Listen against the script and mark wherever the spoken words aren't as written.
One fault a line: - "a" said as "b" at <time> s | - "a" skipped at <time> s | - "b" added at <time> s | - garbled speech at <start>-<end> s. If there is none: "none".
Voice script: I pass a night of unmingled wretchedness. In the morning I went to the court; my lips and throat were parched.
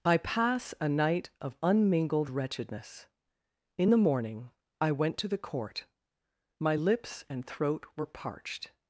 none